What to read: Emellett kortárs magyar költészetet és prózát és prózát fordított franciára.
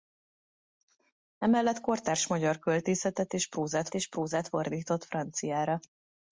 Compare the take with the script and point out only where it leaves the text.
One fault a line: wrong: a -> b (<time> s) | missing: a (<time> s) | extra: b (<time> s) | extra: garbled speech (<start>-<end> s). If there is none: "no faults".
no faults